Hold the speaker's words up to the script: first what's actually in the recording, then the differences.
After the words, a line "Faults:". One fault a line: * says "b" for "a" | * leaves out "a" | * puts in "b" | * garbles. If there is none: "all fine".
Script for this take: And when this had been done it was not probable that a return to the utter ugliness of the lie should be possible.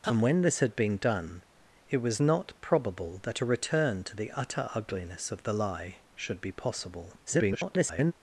And when this had been done it was not probable that a return to the utter ugliness of the lie should be possible. [garbled]
Faults:
* garbles